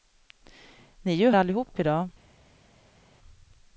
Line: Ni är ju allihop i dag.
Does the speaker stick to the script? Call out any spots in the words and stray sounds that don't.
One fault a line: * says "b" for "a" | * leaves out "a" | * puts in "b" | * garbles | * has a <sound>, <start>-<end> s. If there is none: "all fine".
all fine